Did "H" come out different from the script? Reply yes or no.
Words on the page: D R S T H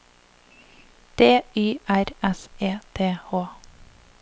no